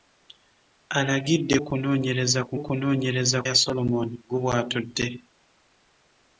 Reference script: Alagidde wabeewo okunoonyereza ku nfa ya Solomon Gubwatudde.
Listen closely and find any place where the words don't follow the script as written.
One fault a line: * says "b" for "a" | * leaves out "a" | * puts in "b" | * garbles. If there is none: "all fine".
* leaves out "wabeewo"
* says "okunoonyereza" for "nfa"